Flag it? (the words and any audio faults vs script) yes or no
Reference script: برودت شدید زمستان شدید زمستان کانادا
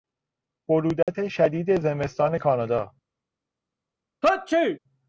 yes